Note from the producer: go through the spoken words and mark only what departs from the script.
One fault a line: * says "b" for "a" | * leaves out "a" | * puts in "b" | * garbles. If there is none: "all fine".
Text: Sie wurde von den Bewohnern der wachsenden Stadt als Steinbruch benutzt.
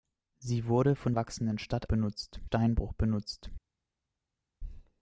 * leaves out "den Bewohnern der"
* says "benutzt" for "als"